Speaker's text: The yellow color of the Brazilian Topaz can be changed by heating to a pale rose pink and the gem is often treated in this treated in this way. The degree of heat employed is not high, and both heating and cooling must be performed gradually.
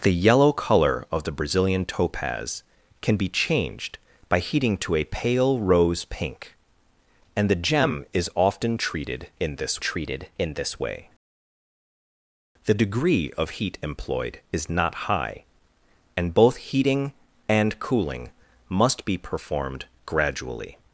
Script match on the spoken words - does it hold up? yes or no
yes